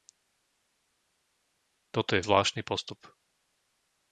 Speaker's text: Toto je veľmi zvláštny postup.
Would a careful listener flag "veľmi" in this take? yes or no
yes